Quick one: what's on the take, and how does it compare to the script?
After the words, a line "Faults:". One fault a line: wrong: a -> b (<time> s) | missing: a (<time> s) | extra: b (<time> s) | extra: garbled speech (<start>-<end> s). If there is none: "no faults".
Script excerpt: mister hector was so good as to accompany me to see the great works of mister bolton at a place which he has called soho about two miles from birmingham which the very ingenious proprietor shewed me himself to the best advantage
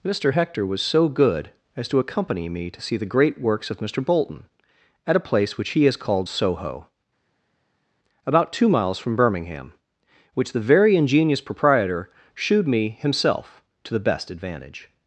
mister hector was so good as to accompany me to see the great works of mister bolton at a place which he has called soho about two miles from birmingham which the very ingenious proprietor shewed me himself to the best advantage
Faults:
no faults